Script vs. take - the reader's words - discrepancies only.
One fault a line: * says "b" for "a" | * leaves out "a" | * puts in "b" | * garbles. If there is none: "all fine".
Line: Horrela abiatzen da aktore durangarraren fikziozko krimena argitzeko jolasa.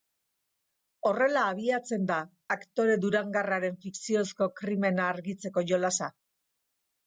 all fine